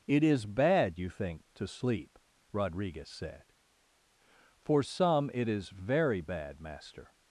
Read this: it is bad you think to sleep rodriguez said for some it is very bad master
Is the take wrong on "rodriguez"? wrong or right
right